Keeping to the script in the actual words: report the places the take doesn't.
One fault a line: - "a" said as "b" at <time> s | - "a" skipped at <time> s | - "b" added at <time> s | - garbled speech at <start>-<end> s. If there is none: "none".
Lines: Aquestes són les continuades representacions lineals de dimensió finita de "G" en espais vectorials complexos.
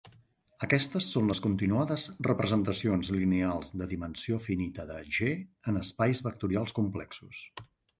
none